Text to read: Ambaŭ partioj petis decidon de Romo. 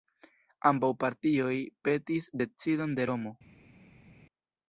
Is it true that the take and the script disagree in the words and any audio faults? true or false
false